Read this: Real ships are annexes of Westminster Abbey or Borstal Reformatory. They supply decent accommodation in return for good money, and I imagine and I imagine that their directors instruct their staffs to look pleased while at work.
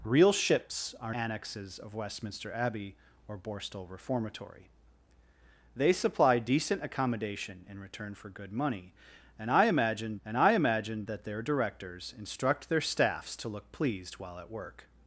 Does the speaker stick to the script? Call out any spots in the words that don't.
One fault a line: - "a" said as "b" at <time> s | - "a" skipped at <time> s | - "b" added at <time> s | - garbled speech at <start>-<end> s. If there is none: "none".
none